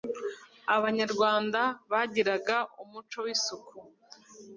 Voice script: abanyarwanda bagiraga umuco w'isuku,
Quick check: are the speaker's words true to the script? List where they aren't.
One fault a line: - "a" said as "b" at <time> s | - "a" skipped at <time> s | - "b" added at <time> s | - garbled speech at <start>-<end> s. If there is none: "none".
none